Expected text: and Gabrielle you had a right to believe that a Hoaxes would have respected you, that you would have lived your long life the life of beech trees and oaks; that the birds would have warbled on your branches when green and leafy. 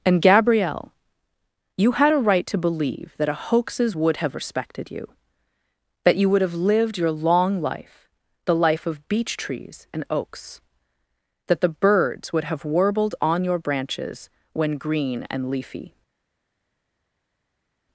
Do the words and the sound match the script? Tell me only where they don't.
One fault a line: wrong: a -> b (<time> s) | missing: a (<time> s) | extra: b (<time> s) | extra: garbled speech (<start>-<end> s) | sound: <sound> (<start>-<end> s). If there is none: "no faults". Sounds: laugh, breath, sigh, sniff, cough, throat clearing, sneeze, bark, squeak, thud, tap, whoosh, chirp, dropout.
no faults